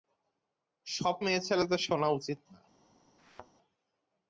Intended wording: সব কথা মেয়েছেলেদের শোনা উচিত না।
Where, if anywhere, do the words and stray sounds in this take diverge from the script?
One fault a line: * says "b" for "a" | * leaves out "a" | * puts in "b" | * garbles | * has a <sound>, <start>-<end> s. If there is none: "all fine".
* leaves out "কথা"
* has a thud, 3.2-3.5 s